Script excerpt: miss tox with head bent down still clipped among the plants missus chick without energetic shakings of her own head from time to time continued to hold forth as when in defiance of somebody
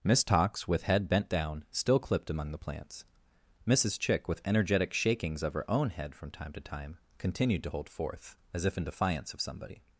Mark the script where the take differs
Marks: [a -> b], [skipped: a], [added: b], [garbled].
miss tox with head bent down still clipped among the plants missus chick [without -> with] energetic shakings of her own head from time to time continued to hold forth as [when -> if] in defiance of somebody